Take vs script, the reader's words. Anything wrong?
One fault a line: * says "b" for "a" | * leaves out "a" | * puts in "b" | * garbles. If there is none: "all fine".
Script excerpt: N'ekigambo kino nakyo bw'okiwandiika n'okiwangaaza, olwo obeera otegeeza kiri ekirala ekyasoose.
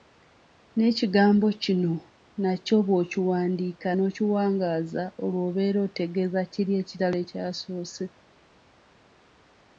all fine